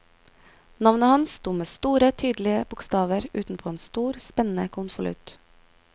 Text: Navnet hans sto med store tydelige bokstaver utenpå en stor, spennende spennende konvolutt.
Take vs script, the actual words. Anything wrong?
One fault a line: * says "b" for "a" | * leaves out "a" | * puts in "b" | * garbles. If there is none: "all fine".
* leaves out "spennende"